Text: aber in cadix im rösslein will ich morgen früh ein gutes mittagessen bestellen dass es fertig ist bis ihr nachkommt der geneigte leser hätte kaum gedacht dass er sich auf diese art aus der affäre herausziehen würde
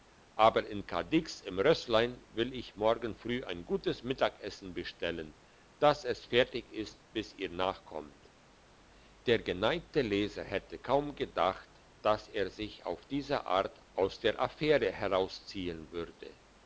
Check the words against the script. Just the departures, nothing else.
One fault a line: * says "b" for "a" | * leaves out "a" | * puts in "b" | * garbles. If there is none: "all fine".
all fine